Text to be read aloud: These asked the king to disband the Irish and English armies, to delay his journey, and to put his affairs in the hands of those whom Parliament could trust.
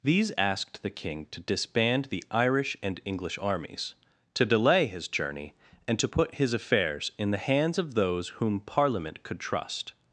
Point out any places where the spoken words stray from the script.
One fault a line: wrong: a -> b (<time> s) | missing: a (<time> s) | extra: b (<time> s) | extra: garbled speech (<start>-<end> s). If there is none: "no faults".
no faults